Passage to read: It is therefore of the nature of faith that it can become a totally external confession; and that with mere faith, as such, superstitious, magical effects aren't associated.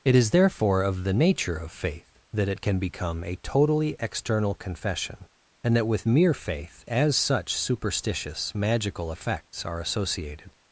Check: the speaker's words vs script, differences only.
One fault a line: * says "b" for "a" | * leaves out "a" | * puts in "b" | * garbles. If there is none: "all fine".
* says "are" for "aren't"